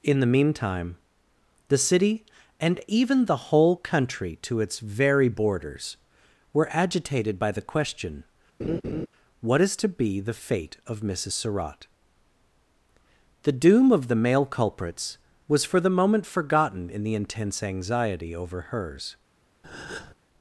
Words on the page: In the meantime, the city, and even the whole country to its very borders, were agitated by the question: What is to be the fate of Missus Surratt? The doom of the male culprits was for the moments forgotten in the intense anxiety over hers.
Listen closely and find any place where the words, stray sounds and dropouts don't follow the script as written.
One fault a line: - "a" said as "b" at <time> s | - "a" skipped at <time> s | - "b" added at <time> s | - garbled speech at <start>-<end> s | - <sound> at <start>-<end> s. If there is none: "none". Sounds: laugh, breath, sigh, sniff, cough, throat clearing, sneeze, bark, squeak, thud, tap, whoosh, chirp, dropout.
- laugh at 8.6-9.1 s
- "moments" said as "moment" at 15.9 s
- breath at 19.6-20.1 s